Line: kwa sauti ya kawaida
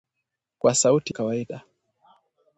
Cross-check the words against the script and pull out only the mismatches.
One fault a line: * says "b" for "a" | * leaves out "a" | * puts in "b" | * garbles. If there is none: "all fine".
* leaves out "ya"